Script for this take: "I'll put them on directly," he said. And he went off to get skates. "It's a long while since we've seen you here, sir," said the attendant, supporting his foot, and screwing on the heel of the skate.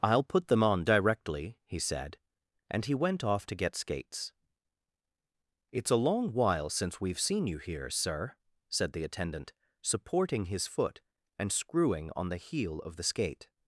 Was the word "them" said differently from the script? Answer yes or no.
no